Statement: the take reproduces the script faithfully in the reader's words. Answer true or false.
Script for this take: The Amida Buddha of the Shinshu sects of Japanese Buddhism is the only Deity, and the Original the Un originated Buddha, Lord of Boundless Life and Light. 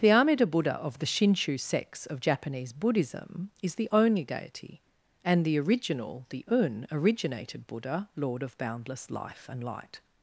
true